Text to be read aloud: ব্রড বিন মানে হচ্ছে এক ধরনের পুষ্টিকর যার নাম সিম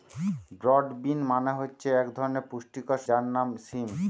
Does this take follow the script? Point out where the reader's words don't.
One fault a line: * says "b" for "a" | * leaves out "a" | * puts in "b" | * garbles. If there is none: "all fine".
all fine